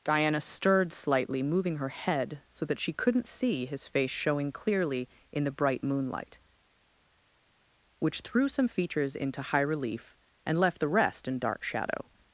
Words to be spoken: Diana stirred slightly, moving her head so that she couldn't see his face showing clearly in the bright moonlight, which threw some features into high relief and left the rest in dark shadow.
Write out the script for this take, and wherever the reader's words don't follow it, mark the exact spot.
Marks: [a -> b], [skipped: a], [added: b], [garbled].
Diana stirred slightly, moving her head so that she couldn't see his face showing clearly in the bright moonlight, which threw some features into high relief and left the rest in dark shadow.